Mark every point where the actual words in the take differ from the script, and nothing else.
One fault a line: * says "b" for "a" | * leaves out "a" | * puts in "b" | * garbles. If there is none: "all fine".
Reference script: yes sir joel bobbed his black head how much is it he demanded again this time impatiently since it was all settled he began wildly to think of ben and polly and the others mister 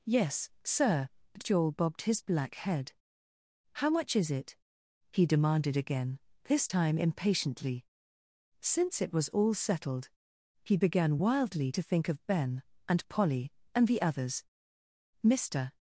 all fine